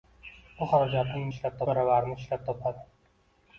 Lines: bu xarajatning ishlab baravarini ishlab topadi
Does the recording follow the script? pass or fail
pass